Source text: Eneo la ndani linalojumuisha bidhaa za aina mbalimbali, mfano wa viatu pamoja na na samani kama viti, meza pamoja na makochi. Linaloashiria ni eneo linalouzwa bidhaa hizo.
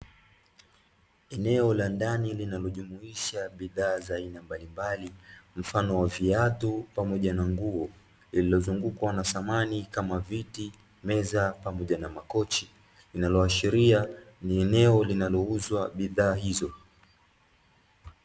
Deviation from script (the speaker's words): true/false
true